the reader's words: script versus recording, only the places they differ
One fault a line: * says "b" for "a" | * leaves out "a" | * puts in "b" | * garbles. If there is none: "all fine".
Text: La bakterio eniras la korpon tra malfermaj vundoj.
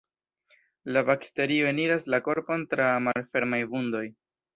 all fine